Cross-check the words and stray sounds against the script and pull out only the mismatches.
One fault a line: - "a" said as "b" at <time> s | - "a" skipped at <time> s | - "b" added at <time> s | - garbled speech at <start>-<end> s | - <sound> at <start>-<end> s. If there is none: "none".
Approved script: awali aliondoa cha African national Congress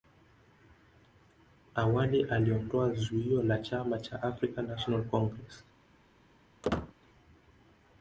- "zuio la chama" added at 2.9 s
- squeak at 6.6-6.9 s